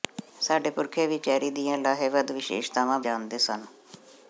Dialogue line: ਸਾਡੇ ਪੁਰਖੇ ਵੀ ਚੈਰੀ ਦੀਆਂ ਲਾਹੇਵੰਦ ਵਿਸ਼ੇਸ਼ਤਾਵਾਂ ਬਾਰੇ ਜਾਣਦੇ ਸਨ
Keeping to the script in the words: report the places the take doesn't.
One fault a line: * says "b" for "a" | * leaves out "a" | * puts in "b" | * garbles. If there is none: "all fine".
* leaves out "ਬਾਰੇ"